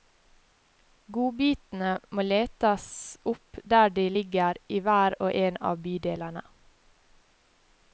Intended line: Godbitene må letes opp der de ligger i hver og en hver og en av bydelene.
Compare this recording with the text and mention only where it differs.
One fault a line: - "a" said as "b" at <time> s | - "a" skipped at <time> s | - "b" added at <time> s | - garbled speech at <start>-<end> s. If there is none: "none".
- "hver og en" skipped at 5.6 s